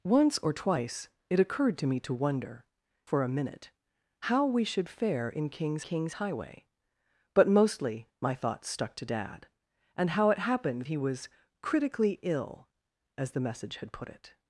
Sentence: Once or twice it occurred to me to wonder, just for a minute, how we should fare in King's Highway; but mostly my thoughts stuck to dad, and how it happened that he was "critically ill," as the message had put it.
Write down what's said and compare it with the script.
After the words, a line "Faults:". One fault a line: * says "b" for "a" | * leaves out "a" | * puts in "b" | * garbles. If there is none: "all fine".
Once or twice it occurred to me to wonder, for a minute, how we should fare in King's King's Highway; but mostly my thoughts stuck to dad, and how it happened he was "critically ill," as the message had put it.
Faults:
* leaves out "just"
* puts in "King's"
* leaves out "that"